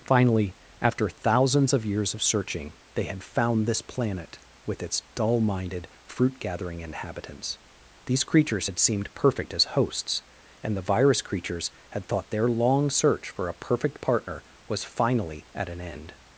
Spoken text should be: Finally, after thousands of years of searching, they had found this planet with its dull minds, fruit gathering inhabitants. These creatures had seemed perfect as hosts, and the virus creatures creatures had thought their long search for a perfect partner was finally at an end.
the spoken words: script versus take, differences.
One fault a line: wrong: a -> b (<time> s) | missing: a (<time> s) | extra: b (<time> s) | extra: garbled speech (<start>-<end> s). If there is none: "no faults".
wrong: minds -> minded (5.4 s)
missing: creatures (11.7 s)